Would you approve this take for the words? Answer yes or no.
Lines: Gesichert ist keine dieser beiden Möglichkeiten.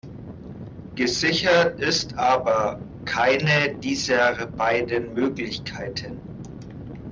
no